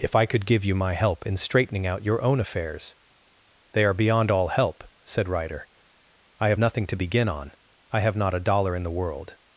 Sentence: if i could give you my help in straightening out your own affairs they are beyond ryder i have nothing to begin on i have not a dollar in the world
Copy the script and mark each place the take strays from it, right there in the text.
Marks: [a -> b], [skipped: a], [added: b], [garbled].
if i could give you my help in straightening out your own affairs they are beyond [added: all help said] ryder i have nothing to begin on i have not a dollar in the world